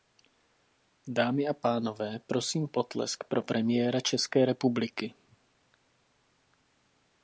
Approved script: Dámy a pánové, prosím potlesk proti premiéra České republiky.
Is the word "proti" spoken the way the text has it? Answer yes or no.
no